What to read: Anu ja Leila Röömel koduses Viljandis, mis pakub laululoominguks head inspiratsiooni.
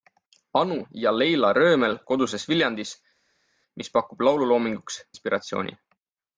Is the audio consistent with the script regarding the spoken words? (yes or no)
no